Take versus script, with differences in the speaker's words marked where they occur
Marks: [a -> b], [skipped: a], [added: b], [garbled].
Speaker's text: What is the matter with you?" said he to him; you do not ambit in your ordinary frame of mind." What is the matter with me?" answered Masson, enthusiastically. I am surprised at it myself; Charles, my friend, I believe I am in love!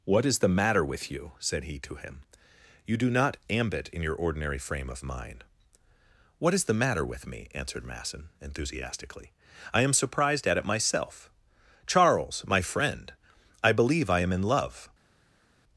What is the matter with you?" said he to him; you do not ambit in your ordinary frame of mind." What is the matter with me?" answered Masson, enthusiastically. I am surprised at it myself; Charles, my friend, I believe I am in love!